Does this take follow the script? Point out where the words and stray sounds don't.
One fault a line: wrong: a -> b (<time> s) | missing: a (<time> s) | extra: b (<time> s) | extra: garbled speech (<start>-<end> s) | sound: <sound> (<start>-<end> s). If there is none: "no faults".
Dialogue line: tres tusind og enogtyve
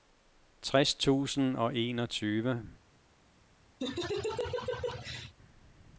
sound: laugh (3.8-5.3 s)